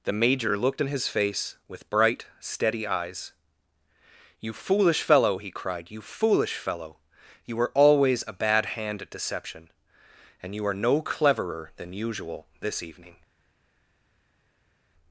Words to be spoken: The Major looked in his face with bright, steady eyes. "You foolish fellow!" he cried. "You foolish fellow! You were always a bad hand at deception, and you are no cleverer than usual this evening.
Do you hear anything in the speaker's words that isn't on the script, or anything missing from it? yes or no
no